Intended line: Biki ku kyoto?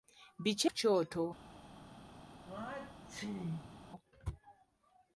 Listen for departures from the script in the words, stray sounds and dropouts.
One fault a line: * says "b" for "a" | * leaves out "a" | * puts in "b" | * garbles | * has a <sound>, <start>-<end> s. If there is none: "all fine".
* has a sneeze, 2.4-3.8 s